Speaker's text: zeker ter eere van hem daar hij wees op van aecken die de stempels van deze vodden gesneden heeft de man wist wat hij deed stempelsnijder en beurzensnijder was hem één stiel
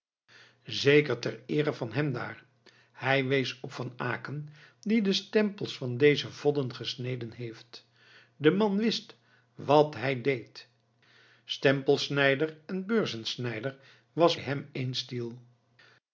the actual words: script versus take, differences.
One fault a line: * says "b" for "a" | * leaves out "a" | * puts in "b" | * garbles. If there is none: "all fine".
all fine